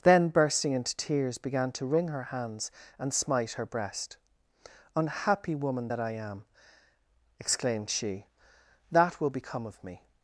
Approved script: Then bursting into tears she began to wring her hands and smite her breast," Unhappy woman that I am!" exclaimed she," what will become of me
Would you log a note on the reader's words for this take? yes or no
yes